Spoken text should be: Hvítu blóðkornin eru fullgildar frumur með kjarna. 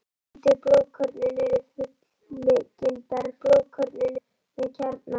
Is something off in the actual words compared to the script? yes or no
yes